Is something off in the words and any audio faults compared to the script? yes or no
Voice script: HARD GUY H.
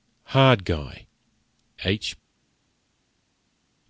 no